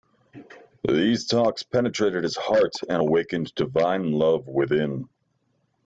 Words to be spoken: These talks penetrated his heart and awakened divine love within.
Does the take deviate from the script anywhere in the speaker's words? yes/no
no